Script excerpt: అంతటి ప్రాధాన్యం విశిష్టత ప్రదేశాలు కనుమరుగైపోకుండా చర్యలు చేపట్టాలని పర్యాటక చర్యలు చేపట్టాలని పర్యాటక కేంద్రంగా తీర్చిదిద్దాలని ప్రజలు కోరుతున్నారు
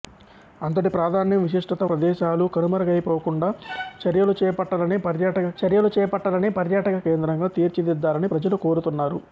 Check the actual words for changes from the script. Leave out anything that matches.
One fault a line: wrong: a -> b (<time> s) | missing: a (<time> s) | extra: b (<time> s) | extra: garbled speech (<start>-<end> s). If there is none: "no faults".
no faults